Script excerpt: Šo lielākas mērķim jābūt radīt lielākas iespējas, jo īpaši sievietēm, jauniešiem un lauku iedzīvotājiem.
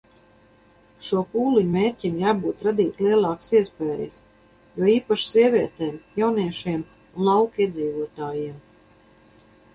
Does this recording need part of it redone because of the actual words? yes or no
yes